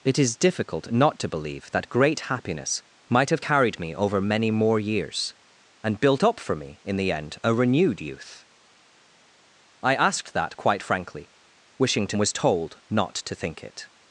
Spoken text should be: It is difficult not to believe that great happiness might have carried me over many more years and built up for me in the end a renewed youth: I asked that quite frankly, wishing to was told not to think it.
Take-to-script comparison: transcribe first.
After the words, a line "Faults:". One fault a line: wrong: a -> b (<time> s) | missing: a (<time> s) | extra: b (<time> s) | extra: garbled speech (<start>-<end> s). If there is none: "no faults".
It is difficult not to believe that great happiness might have carried me over many more years and built up for me in the end a renewed youth: I asked that quite frankly, wishing to was told not to think it.
Faults:
no faults